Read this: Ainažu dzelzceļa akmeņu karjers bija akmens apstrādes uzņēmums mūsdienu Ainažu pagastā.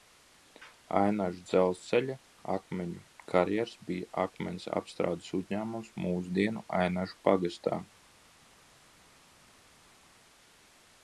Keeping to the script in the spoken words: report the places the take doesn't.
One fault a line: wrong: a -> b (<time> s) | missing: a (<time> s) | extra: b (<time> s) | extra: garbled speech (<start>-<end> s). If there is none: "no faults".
no faults